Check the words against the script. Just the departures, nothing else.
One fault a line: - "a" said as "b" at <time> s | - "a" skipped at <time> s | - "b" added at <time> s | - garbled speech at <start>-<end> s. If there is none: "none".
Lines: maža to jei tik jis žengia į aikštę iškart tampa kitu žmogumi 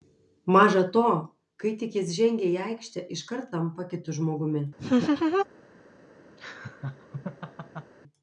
- "jei" said as "kai" at 1.6 s